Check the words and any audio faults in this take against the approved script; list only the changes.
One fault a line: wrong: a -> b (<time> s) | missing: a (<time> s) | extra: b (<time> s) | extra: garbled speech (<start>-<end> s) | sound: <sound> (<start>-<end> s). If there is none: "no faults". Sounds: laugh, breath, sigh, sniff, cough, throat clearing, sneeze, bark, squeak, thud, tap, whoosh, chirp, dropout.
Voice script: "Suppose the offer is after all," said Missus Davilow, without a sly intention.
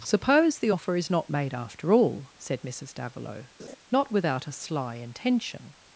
extra: not made (1.1 s)
sound: laugh (3.6-3.8 s)
extra: not (3.9 s)